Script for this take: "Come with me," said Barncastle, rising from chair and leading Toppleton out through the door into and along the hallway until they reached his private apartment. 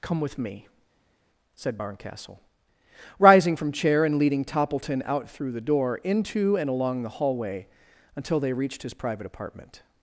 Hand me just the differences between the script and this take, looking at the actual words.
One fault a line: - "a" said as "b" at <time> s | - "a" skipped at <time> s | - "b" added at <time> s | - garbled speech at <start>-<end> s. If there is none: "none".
none